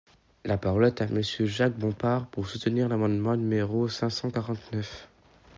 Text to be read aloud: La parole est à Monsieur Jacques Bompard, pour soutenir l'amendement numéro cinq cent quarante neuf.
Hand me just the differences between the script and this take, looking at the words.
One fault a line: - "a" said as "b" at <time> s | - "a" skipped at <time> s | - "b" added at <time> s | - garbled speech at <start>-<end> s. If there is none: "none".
none